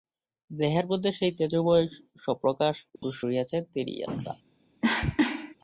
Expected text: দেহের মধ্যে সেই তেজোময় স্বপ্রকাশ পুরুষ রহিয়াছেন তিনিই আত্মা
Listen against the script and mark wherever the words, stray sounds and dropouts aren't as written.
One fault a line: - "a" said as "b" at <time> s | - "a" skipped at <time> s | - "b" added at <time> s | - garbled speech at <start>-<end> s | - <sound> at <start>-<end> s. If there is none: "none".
- dropout at 3.0-3.0 s
- cough at 4.8-5.6 s